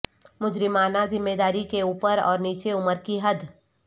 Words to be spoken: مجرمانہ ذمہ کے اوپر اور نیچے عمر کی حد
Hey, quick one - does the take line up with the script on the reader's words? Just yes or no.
no